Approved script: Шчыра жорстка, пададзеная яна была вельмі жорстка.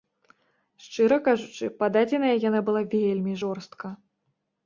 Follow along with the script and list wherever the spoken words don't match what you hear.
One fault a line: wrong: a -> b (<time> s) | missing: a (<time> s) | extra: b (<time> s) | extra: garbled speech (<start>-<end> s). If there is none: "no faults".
wrong: жорстка -> кажучы (1.3 s)